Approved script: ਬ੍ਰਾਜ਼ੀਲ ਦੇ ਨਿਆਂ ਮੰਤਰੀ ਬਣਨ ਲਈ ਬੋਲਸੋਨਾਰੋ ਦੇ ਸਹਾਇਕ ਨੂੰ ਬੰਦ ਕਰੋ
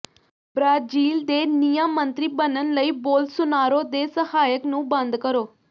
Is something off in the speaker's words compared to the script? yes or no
no